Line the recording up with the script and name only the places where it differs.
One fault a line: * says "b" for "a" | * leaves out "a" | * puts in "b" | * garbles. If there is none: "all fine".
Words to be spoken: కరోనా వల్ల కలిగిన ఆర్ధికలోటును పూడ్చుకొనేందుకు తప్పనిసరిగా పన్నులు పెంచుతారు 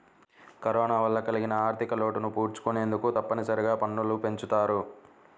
all fine